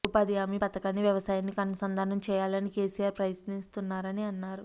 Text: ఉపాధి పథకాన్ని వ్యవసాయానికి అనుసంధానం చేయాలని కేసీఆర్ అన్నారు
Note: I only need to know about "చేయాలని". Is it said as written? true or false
true